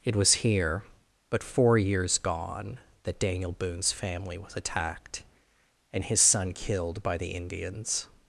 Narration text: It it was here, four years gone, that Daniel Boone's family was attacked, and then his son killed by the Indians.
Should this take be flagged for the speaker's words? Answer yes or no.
yes